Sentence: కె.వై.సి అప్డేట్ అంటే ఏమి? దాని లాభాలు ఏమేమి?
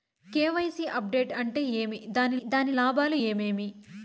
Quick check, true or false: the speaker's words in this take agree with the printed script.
false